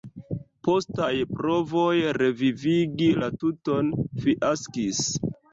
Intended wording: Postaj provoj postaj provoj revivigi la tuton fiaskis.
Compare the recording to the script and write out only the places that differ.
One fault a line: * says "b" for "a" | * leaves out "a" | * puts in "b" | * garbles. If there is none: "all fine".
* leaves out "postaj provoj"